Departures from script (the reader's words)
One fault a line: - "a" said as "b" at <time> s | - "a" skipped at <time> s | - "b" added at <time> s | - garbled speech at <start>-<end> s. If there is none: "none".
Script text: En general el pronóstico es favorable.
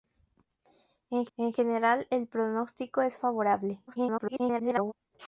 - "en" added at 1.4 s
- garbled speech at 3.9-4.9 s